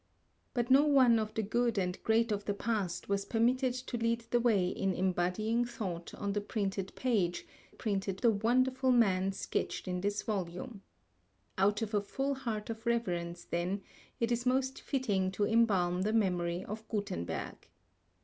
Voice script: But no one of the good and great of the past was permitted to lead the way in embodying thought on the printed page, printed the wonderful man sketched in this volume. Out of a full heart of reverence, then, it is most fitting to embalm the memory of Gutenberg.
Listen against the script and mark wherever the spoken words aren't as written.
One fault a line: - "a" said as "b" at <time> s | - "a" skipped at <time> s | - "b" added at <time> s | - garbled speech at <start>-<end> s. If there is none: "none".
none